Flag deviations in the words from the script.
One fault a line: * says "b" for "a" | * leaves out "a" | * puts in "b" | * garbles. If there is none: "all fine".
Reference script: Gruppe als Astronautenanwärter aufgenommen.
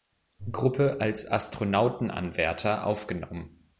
all fine